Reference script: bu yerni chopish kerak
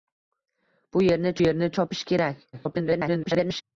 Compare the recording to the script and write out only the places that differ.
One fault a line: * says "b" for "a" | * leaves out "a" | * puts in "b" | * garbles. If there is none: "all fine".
* puts in "yerni"
* garbles